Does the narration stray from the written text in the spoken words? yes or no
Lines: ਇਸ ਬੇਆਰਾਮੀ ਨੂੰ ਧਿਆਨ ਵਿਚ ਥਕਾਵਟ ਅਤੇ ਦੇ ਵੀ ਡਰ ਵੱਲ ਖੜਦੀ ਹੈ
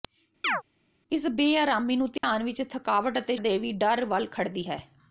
no